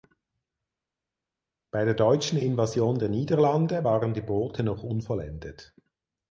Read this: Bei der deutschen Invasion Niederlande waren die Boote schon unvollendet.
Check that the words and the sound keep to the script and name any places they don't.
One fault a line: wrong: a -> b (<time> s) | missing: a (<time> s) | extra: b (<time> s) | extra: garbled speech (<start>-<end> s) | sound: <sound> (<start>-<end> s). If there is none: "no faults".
extra: der (3.0 s)
wrong: schon -> noch (4.6 s)